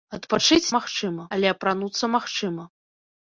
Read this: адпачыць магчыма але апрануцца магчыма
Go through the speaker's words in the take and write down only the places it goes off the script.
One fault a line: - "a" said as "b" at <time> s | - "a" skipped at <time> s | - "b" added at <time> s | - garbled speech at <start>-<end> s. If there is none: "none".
none